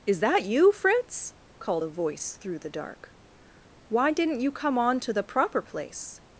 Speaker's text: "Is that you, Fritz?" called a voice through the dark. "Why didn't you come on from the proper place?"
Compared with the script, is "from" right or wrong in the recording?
wrong